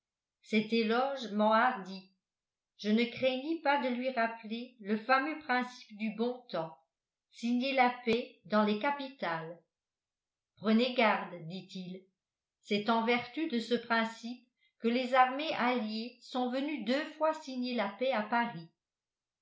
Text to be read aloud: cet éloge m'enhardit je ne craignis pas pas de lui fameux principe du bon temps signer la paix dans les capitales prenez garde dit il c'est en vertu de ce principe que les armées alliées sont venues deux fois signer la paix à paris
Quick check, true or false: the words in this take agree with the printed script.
false